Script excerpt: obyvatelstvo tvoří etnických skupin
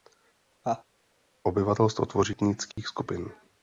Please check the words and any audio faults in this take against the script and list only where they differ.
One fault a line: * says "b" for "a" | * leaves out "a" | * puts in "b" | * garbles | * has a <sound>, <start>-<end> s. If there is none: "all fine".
* has a laugh, 0.6-0.8 s
* has a dropout, 2.7-2.8 s